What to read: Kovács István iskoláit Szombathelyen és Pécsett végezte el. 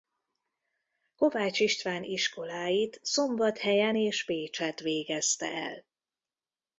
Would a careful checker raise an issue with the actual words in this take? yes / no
no